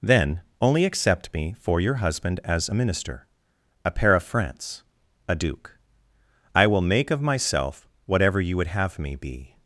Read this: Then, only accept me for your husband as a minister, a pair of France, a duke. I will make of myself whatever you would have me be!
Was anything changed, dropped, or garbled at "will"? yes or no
no